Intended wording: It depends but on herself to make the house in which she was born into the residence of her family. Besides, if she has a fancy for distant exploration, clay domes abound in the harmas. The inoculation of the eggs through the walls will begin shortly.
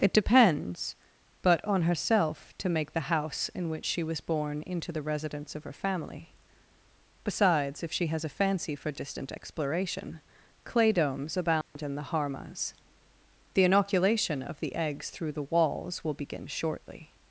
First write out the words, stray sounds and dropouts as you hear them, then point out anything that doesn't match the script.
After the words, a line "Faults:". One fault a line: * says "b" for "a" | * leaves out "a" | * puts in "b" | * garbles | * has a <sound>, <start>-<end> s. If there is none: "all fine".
It depends but on herself to make the house in which she was born into the residence of her family. Besides, if she has a fancy for distant exploration, clay domes abound in the harmas. The inoculation of the eggs through the walls will begin shortly.
Faults:
* has a dropout, 11.6-11.8 s